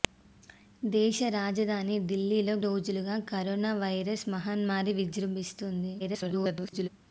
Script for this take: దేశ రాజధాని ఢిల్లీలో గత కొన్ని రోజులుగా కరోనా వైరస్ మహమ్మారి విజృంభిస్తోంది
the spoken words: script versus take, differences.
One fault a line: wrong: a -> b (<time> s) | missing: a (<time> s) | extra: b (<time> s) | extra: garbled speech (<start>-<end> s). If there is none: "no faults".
missing: గత కొన్ని (2.5 s)
extra: garbled speech (6.0-6.9 s)